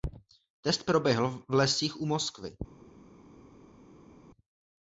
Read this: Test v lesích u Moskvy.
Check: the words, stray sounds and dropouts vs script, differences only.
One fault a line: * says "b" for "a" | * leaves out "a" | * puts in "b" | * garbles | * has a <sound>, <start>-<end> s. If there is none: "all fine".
* puts in "proběhl"